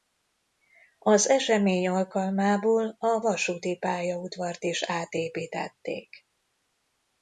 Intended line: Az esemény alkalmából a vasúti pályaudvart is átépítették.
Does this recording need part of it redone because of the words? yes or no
no